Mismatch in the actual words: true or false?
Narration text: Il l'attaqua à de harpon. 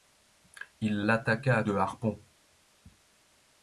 false